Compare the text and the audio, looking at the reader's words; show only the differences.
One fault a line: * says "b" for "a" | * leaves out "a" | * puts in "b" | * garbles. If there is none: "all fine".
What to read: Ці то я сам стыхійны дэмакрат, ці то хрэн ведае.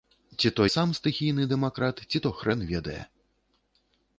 * leaves out "я"